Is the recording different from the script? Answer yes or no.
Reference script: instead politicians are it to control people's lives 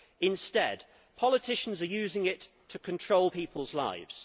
yes